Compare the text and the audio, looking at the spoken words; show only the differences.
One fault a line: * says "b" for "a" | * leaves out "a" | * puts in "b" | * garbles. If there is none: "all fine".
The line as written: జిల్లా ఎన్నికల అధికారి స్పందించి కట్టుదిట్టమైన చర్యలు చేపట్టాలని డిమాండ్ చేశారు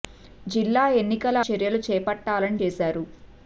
* leaves out "అధికారి స్పందించి కట్టుదిట్టమైన"
* leaves out "డిమాండ్"